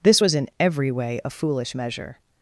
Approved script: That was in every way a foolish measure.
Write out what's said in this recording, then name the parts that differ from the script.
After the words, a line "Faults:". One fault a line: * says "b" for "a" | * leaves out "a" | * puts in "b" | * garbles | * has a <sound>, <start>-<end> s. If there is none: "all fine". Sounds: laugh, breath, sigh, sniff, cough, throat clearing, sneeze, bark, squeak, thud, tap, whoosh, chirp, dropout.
This was in every way a foolish measure.
Faults:
* says "This" for "That"